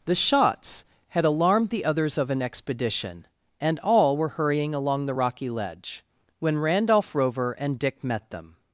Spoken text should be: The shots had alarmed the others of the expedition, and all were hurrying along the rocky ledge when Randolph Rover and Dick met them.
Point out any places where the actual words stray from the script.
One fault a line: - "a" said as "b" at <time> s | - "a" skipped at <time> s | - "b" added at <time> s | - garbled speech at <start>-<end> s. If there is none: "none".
- "the" said as "an" at 2.3 s